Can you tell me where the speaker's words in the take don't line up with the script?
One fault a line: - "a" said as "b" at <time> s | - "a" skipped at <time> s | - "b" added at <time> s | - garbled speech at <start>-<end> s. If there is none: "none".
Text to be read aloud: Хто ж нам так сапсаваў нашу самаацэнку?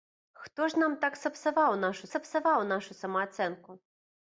- "сапсаваў нашу" added at 2.1 s